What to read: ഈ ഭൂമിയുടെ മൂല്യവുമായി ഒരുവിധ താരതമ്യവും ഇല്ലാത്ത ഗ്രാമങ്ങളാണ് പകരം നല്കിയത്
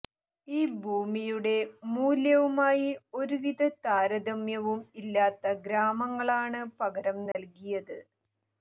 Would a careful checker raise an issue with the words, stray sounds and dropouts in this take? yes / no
yes